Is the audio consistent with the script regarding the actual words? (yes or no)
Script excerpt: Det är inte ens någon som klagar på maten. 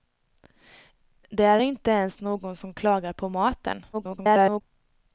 no